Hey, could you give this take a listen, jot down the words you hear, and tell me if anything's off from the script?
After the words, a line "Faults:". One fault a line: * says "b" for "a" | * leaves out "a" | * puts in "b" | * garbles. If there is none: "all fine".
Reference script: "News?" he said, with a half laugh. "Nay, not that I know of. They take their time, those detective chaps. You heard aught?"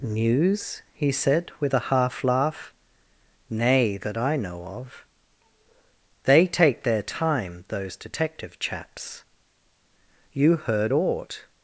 "News?" he said, with a half laugh. "Nay, that I know of. They take their time, those detective chaps. You heard aught?"
Faults:
* leaves out "not"